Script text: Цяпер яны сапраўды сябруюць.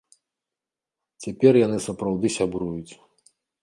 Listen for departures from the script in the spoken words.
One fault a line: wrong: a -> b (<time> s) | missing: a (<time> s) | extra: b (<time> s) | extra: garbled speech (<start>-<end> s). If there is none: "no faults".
no faults